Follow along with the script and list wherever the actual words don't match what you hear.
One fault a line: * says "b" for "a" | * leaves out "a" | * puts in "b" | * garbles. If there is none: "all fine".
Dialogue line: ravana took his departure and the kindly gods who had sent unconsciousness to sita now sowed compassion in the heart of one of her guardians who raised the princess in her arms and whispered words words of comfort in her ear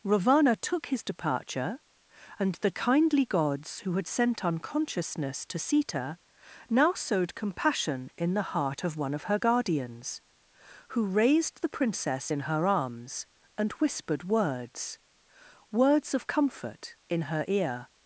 all fine